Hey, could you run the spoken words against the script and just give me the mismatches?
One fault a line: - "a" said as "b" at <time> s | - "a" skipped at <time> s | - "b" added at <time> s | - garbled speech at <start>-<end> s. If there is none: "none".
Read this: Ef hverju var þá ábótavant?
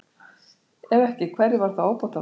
- "ekki" added at 1.1 s